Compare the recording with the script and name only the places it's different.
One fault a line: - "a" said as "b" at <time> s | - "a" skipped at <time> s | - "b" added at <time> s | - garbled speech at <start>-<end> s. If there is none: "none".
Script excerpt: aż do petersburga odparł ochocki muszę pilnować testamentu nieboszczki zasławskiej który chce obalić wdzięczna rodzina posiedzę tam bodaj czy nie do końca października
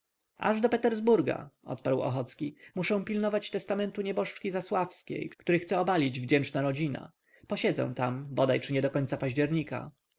none